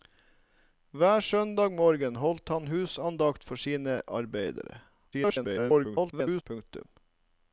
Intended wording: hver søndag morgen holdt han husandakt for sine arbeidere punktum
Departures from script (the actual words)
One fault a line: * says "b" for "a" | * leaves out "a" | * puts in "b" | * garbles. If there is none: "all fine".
* garbles